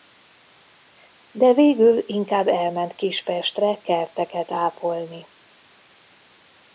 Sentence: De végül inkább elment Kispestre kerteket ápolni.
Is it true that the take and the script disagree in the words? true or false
false